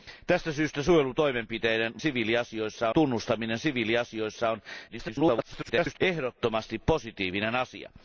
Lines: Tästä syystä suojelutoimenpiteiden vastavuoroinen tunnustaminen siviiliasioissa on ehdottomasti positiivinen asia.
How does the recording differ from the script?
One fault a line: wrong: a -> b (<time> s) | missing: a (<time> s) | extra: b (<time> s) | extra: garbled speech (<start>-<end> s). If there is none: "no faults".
wrong: vastavuoroinen -> siviiliasioissa (2.0 s)
extra: garbled speech (4.9-6.0 s)